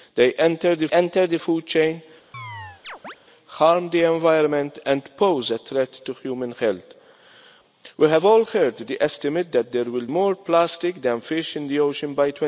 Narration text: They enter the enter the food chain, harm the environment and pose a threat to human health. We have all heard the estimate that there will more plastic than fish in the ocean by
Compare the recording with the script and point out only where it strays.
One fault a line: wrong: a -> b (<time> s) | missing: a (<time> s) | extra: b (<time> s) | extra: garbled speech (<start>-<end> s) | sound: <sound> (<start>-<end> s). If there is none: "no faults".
sound: chirp (2.3-3.2 s)